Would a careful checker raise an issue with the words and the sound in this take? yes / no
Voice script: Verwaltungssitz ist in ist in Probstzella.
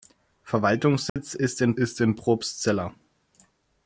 yes